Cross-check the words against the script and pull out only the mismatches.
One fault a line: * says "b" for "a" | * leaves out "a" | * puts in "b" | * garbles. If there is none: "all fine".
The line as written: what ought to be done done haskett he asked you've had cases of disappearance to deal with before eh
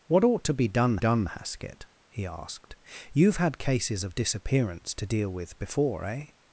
all fine